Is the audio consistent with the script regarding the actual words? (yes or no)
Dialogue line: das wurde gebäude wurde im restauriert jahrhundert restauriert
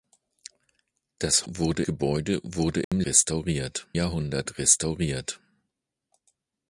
yes